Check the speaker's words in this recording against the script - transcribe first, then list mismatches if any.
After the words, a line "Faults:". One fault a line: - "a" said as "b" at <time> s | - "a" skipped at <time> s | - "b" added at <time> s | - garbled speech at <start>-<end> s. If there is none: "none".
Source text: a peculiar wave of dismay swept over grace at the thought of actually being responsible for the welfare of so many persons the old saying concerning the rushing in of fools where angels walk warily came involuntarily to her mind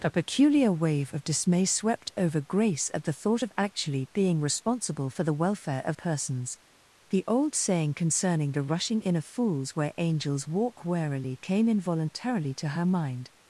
a peculiar wave of dismay swept over grace at the thought of actually being responsible for the welfare of persons the old saying concerning the rushing in of fools where angels walk warily came involuntarily to her mind
Faults:
- "so many" skipped at 6.0 s